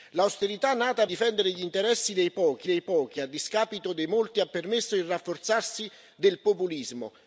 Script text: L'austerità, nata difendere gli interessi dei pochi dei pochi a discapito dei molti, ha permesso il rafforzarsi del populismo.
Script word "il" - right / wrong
right